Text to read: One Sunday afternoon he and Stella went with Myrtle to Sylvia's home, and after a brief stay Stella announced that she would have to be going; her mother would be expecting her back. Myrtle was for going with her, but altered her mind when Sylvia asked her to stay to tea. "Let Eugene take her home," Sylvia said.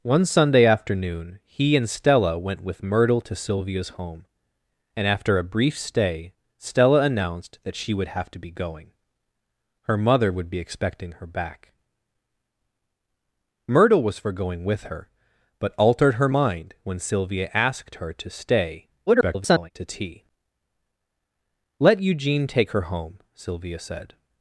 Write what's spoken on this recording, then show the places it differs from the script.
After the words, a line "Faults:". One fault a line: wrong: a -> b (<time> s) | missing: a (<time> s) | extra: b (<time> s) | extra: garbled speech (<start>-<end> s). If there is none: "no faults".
One Sunday afternoon he and Stella went with Myrtle to Sylvia's home, and after a brief stay Stella announced that she would have to be going; her mother would be expecting her back. Myrtle was for going with her, but altered her mind when Sylvia asked her to stay [garbled] to tea. "Let Eugene take her home," Sylvia said.
Faults:
extra: garbled speech (19.1-19.7 s)